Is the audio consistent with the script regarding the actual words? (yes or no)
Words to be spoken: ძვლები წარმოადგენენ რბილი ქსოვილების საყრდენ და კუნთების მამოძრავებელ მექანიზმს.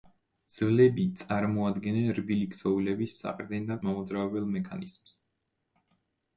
no